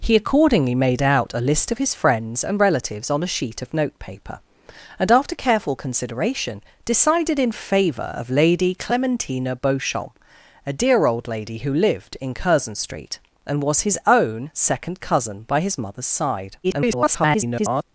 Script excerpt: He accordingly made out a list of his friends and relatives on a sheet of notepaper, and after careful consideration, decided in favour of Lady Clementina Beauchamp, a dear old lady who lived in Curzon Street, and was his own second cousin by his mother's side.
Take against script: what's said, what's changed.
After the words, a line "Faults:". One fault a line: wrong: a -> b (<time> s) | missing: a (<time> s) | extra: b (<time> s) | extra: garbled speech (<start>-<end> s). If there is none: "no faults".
He accordingly made out a list of his friends and relatives on a sheet of notepaper, and after careful consideration, decided in favour of Lady Clementina Beauchamp, a dear old lady who lived in Curzon Street, and was his own second cousin by his mother's side. [garbled]
Faults:
extra: garbled speech (16.6-17.8 s)